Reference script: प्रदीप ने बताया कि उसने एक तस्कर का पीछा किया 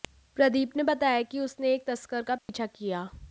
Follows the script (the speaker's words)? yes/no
yes